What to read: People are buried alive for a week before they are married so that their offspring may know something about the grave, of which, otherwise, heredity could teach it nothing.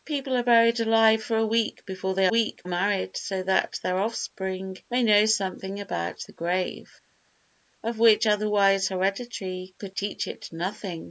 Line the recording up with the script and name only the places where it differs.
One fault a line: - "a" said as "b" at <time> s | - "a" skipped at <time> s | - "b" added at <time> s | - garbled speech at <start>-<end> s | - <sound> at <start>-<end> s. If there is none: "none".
- "are" said as "week" at 2.3 s